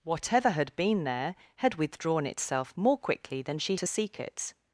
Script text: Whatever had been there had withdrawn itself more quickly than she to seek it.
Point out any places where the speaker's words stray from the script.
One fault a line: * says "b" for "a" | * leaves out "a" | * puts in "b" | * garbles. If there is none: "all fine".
all fine